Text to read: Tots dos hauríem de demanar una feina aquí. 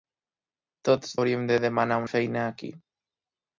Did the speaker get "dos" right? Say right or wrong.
wrong